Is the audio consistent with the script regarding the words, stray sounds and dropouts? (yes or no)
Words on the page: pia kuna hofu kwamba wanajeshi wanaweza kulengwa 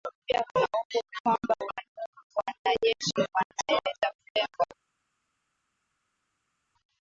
yes